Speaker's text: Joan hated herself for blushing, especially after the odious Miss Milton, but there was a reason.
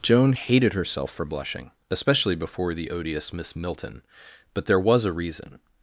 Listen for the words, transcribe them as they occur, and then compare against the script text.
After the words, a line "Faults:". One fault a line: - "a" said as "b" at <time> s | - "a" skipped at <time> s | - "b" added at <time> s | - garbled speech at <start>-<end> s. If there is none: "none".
Joan hated herself for blushing, especially before the odious Miss Milton, but there was a reason.
Faults:
- "after" said as "before" at 2.4 s